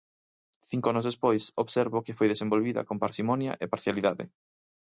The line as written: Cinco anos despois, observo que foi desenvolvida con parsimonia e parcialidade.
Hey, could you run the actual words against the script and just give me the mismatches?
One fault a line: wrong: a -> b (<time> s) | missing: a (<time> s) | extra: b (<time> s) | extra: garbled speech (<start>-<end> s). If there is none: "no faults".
no faults